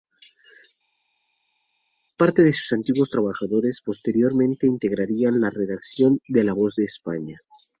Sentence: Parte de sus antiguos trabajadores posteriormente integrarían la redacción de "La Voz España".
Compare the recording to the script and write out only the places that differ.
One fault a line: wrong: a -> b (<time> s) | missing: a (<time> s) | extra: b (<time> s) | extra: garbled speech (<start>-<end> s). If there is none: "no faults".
extra: de (6.7 s)